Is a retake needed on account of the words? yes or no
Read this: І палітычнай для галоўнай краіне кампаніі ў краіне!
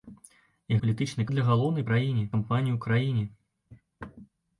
no